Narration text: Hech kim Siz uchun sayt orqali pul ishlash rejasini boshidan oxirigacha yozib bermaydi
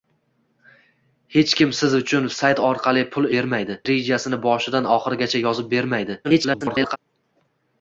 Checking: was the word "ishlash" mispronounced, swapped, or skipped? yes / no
yes